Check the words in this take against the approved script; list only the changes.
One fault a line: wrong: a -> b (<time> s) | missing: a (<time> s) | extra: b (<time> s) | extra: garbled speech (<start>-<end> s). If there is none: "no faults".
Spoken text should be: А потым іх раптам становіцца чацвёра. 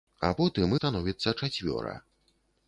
missing: іх раптам (0.7 s)